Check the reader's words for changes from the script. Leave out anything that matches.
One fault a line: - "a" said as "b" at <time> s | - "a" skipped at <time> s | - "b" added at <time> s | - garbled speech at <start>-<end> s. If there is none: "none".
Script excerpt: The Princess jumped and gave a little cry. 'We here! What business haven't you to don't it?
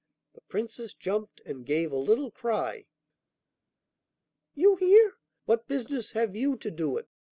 - "We" said as "You" at 4.5 s
- "haven't" said as "have" at 6.1 s
- "don't" said as "do" at 6.7 s